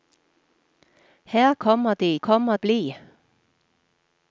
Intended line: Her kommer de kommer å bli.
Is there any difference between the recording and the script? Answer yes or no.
no